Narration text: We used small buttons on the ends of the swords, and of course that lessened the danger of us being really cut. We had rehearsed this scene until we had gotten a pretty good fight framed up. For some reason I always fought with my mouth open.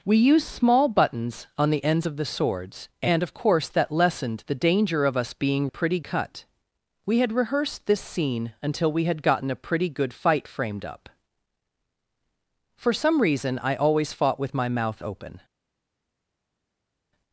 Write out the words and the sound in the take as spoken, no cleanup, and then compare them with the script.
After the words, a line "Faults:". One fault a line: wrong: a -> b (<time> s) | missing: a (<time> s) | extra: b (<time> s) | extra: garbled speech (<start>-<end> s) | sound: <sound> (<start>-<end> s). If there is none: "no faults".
We used small buttons on the ends of the swords, and of course that lessened the danger of us being pretty cut. We had rehearsed this scene until we had gotten a pretty good fight framed up. For some reason I always fought with my mouth open.
Faults:
wrong: really -> pretty (5.7 s)